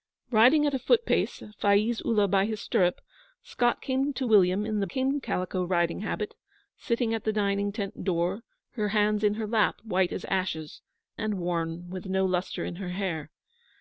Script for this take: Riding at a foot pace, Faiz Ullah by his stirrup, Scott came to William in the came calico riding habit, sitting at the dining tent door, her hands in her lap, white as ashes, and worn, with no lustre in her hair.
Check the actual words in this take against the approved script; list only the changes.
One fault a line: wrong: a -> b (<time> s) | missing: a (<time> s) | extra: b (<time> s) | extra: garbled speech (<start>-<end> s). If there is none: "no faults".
no faults